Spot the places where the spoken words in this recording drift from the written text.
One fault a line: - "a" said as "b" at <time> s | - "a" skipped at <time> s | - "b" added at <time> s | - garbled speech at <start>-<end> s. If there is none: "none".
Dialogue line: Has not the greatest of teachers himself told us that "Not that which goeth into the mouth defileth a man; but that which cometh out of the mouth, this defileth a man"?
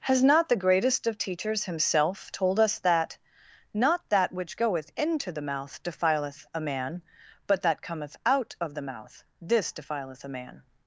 - "which" skipped at 7.8 s